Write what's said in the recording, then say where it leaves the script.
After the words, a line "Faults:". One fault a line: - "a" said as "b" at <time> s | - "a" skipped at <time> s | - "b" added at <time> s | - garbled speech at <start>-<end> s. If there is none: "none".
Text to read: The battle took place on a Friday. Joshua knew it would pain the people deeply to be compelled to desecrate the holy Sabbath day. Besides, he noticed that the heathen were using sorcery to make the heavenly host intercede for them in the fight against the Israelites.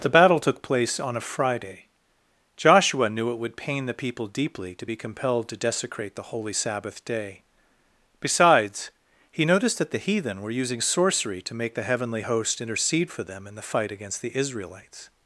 The battle took place on a Friday. Joshua knew it would pain the people deeply to be compelled to desecrate the holy Sabbath day. Besides, he noticed that the heathen were using sorcery to make the heavenly host intercede for them in the fight against the Israelites.
Faults:
none